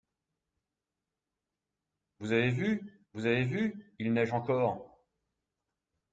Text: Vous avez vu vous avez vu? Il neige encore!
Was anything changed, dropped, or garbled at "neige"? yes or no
no